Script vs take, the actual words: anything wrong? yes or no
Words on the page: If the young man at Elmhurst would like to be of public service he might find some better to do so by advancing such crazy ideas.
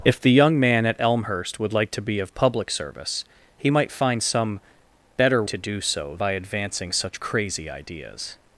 no